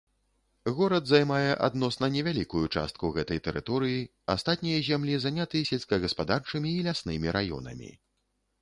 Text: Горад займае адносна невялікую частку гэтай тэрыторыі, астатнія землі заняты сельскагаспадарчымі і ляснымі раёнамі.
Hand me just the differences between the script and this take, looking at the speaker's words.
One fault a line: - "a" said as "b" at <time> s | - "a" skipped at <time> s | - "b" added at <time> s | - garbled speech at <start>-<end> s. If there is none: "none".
none